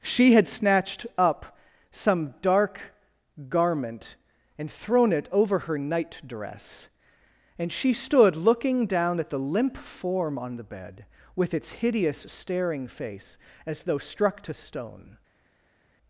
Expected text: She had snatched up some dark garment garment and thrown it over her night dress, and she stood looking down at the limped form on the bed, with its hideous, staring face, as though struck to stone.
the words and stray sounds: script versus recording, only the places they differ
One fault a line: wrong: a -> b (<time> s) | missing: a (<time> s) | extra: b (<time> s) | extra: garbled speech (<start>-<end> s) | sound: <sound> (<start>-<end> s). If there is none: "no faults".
missing: garment (4.2 s)
wrong: limped -> limp (9.4 s)